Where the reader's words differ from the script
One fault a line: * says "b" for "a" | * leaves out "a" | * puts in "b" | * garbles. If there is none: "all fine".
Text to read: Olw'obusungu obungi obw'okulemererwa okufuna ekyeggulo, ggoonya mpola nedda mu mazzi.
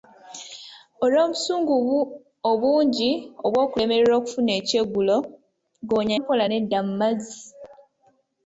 all fine